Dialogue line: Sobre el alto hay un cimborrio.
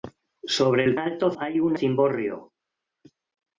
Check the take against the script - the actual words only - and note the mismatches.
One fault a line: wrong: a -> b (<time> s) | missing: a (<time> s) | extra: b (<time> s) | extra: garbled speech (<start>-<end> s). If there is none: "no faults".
no faults